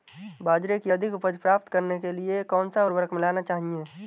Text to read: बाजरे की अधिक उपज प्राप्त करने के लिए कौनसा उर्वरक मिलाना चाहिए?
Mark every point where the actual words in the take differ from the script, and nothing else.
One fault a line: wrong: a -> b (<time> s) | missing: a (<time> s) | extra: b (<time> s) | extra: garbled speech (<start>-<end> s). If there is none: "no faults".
no faults